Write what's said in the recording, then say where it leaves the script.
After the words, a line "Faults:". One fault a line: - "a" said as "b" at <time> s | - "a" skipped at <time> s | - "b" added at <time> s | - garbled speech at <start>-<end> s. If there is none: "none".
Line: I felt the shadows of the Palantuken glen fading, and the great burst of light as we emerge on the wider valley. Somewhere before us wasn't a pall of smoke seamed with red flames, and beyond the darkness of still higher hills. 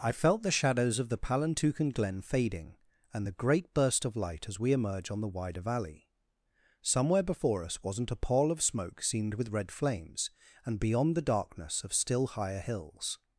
I felt the shadows of the Palantuken glen fading, and the great burst of light as we emerge on the wider valley. Somewhere before us wasn't a pall of smoke seamed with red flames, and beyond the darkness of still higher hills.
Faults:
none